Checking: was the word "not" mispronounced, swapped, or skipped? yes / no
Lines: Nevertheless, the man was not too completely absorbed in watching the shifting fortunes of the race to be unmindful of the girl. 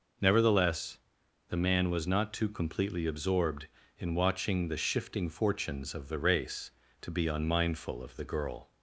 no